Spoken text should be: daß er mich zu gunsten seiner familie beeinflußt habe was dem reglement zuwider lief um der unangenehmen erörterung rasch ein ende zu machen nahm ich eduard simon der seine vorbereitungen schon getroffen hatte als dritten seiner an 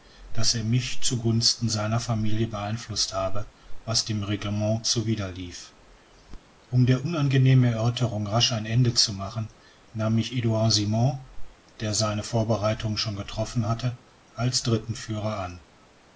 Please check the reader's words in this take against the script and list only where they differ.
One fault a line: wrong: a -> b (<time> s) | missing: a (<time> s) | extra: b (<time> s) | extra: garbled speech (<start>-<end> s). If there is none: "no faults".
wrong: seiner -> führer (14.9 s)